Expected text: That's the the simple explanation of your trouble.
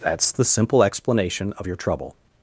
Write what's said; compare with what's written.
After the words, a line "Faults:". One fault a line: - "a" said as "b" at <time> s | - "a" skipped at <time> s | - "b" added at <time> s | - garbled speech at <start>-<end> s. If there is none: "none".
That's the simple explanation of your trouble.
Faults:
- "the" skipped at 0.5 s